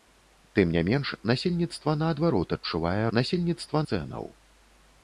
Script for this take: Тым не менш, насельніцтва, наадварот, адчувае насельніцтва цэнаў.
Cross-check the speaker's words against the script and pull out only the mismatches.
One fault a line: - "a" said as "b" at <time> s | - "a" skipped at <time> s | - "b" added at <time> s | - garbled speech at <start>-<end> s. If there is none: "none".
none